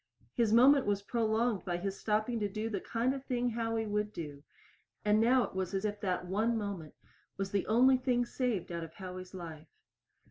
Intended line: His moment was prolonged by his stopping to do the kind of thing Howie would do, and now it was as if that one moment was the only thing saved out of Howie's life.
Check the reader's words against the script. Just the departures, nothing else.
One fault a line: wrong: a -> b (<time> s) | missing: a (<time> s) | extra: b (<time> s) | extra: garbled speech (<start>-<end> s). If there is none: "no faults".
no faults